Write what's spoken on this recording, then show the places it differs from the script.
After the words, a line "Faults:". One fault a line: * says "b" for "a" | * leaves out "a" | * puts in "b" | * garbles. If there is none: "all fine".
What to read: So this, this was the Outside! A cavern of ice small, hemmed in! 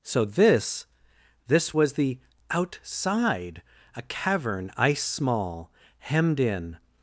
So this, this was the Outside! A cavern ice small, hemmed in!
Faults:
* leaves out "of"